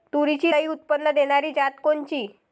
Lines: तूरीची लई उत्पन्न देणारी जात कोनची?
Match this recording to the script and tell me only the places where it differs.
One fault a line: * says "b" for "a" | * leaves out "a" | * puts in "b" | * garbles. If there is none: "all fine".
all fine